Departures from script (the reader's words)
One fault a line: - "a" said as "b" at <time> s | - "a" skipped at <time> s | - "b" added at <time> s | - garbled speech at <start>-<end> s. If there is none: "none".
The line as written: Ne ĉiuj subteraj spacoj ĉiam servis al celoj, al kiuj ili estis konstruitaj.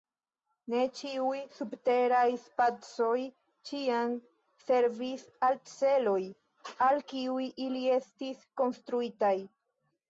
none